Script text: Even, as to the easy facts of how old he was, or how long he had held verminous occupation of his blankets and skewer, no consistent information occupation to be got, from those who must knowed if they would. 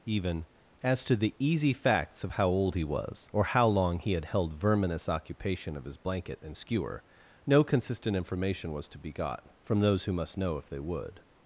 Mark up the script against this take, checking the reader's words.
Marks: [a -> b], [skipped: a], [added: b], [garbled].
Even, as to the easy facts of how old he was, or how long he had held verminous occupation of his [blankets -> blanket] and skewer, no consistent information [occupation -> was] to be got, from those who must [knowed -> know] if they would.